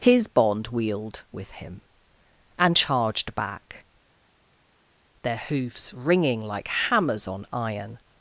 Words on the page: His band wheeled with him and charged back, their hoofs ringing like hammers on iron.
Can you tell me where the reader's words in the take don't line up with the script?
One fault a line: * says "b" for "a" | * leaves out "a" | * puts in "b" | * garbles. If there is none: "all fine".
* says "bond" for "band"